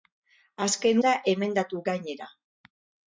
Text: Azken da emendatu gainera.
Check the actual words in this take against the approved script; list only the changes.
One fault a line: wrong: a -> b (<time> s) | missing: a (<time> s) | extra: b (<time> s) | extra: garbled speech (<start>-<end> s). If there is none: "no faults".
no faults